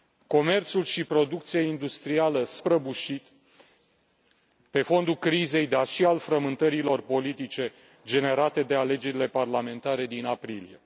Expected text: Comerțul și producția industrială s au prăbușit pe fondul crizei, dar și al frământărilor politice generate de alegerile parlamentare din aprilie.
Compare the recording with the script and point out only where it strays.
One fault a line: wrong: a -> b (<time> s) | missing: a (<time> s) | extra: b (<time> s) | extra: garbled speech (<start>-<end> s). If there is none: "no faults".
missing: au (2.6 s)